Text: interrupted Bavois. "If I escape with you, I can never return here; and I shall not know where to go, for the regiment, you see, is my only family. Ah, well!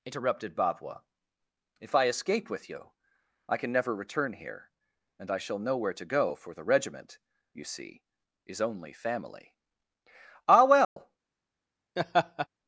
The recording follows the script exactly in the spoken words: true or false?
false